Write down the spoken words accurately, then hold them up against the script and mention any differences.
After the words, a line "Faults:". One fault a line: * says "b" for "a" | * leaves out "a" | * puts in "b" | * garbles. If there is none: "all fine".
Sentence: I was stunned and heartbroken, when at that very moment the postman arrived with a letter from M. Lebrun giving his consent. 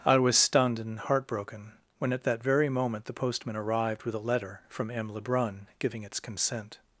I was stunned and heartbroken, when at that very moment the postman arrived with a letter from M. Lebrun giving its consent.
Faults:
* says "its" for "his"